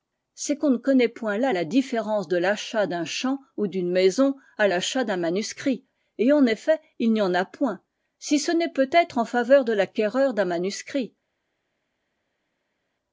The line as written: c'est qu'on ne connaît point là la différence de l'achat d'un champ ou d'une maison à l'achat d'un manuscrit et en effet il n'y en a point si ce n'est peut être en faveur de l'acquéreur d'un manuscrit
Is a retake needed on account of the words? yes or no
no